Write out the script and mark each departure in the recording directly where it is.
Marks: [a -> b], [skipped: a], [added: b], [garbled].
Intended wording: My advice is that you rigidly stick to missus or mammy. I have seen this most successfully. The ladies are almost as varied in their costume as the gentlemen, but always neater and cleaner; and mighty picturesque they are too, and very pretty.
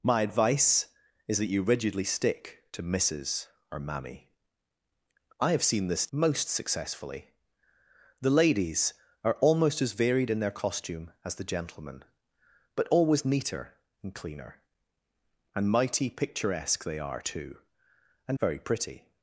My advice is that you rigidly stick to missus or mammy. I have seen this most successfully. The ladies are almost as varied in their costume as the gentlemen, but always neater and cleaner; and mighty picturesque they are too, and very pretty.